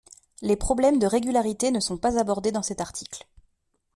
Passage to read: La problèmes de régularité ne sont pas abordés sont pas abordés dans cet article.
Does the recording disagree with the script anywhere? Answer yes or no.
yes